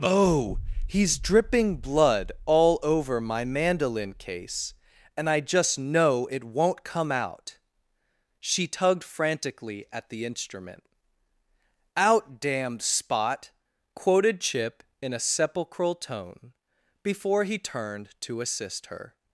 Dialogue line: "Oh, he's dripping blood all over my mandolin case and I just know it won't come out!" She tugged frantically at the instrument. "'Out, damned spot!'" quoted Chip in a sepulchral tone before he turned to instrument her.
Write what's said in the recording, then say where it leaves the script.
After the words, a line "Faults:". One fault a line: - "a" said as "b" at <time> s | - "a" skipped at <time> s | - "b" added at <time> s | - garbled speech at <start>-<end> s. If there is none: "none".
"Oh, he's dripping blood all over my mandolin case and I just know it won't come out!" She tugged frantically at the instrument. "'Out, damned spot!'" quoted Chip in a sepulchral tone before he turned to assist her.
Faults:
- "instrument" said as "assist" at 18.4 s